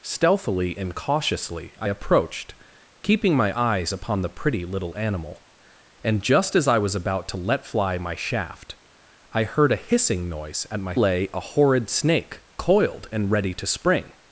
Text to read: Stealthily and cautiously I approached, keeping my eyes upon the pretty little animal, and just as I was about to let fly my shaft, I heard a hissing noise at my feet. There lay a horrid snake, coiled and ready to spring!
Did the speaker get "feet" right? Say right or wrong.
wrong